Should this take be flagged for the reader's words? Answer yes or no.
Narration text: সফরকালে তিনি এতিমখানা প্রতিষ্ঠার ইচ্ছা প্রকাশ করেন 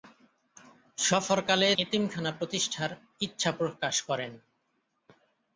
yes